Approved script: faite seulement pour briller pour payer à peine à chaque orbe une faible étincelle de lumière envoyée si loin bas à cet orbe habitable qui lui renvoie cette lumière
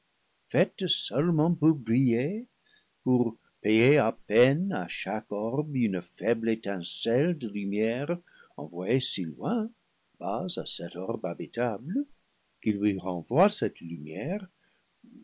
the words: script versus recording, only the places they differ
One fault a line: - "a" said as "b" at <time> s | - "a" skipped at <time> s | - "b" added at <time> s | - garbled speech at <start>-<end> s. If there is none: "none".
none